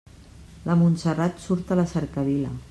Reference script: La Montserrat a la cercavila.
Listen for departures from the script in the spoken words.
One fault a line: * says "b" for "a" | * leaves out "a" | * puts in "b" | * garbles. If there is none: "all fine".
* puts in "surt"